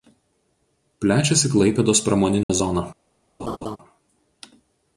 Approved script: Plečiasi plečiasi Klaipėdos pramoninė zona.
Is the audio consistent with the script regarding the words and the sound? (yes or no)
no